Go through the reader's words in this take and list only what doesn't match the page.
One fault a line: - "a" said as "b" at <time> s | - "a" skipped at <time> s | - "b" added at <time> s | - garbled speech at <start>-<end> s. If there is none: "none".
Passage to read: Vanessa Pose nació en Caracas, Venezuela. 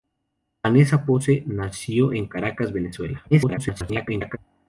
- garbled speech at 3.3-4.4 s